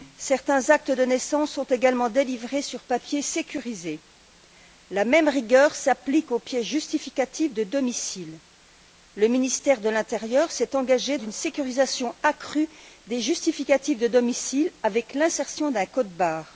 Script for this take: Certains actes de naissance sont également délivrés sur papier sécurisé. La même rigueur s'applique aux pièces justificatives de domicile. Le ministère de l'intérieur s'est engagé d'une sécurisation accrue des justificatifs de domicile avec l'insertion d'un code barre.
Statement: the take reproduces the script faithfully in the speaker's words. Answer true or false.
true